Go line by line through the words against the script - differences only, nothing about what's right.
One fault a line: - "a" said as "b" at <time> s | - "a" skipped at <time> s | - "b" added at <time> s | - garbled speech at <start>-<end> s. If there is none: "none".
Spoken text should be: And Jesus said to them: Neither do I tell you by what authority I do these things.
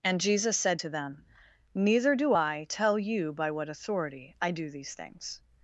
none